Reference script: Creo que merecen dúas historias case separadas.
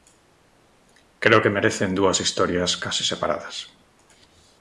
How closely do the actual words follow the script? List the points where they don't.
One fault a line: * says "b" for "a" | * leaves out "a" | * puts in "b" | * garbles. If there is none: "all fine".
all fine